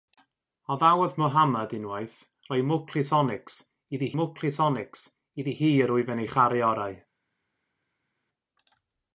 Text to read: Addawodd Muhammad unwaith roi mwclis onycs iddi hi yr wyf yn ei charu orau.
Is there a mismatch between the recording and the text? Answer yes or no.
yes